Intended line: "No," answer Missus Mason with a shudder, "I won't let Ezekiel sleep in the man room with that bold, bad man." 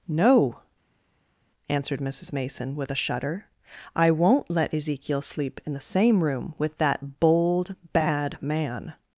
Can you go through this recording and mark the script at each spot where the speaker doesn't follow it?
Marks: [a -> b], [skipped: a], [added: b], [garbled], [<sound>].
"No," [answer -> answered] Missus Mason with a shudder, "I won't let Ezekiel sleep in the [man -> same] room with that bold, bad man."